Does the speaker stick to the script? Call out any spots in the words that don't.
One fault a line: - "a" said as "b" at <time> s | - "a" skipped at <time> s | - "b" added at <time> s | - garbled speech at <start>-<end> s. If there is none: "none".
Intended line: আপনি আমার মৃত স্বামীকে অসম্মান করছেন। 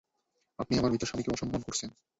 none